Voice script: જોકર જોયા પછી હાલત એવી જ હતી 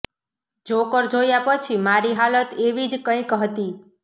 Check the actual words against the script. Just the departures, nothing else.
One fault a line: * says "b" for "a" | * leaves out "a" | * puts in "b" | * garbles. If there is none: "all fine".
* puts in "મારી"
* puts in "કંઈક"